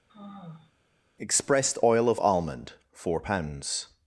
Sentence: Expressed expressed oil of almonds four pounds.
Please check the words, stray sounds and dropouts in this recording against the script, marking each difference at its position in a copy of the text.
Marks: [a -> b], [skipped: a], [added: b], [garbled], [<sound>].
[sigh] Expressed [skipped: expressed] oil of [almonds -> almond] four pounds.